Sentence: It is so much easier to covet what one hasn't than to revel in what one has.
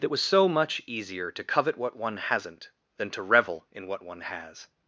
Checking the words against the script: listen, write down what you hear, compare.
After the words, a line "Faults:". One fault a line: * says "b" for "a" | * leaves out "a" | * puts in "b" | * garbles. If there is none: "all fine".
It was so much easier to covet what one hasn't than to revel in what one has.
Faults:
* says "was" for "is"